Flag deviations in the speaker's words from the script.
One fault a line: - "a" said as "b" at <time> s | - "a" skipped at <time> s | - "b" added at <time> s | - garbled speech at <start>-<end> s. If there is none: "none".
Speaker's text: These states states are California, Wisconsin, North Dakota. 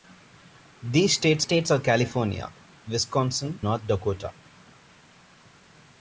none